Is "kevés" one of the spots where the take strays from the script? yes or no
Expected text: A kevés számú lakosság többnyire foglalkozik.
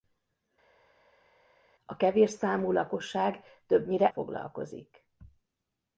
no